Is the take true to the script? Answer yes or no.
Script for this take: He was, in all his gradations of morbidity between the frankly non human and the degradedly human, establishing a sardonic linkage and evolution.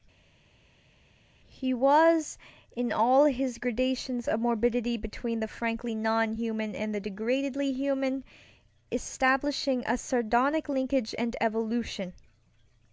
yes